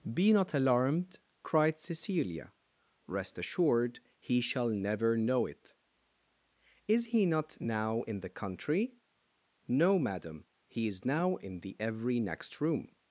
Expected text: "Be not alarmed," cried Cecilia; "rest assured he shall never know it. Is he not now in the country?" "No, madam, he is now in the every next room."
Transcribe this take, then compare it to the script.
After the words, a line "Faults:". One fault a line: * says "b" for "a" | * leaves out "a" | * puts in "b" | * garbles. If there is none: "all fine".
"Be not alarmed," cried Cecilia; "rest assured he shall never know it. Is he not now in the country?" "No, madam, he is now in the every next room."
Faults:
all fine